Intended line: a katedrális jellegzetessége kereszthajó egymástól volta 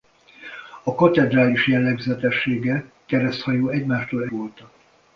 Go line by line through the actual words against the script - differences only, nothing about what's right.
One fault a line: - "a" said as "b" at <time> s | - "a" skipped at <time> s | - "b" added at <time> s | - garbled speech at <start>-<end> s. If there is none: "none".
none